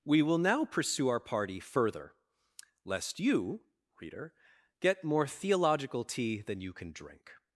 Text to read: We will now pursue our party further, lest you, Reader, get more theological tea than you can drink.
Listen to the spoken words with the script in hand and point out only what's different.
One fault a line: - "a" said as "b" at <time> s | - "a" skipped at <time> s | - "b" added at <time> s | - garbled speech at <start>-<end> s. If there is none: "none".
none